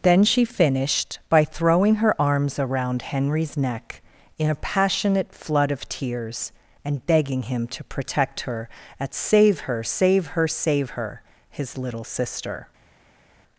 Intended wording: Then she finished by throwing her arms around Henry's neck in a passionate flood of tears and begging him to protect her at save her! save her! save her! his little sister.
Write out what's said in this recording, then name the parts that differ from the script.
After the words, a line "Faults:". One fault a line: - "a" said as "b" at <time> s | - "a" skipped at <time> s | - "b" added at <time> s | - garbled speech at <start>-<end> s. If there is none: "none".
Then she finished by throwing her arms around Henry's neck in a passionate flood of tears and begging him to protect her at save her! save her! save her! his little sister.
Faults:
none